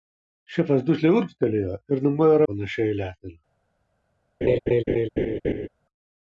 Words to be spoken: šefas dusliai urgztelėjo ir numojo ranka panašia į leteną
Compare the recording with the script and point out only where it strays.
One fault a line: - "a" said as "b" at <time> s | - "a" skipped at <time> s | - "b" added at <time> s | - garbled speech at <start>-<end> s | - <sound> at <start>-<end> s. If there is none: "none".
- "ranka" skipped at 2.4 s
- laugh at 4.4-5.7 s